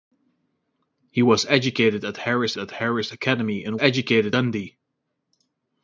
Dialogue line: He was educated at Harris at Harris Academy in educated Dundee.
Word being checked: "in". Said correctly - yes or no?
yes